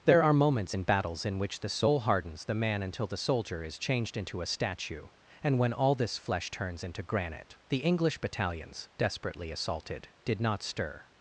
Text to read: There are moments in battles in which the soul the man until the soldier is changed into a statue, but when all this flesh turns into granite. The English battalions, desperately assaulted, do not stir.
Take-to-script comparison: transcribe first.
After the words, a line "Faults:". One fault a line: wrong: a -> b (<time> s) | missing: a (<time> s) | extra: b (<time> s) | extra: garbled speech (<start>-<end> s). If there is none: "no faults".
There are moments in battles in which the soul hardens the man until the soldier is changed into a statue, and when all this flesh turns into granite. The English battalions, desperately assaulted, did not stir.
Faults:
extra: hardens (2.0 s)
wrong: but -> and (5.4 s)
wrong: do -> did (10.2 s)